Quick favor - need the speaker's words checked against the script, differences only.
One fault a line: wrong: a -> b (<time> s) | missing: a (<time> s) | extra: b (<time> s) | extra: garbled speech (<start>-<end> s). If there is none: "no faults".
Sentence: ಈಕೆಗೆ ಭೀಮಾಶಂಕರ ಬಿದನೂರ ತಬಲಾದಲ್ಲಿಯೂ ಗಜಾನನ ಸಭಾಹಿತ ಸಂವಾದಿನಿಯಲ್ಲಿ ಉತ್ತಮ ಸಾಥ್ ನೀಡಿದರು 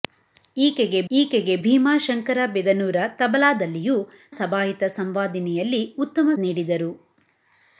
extra: ಈಕೆಗೆ (1.1 s)
missing: ಗಜಾನನ (4.0 s)
missing: ಸಾಥ್ (6.3 s)